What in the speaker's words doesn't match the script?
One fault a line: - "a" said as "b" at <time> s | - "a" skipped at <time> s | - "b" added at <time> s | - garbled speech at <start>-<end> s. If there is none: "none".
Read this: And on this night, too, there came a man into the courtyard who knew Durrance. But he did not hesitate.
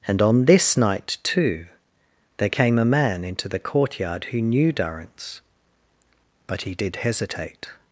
- "not" skipped at 7.0 s